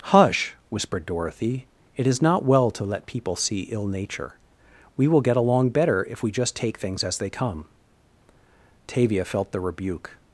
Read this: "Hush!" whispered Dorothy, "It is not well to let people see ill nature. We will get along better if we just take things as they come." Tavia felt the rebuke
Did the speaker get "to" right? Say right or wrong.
right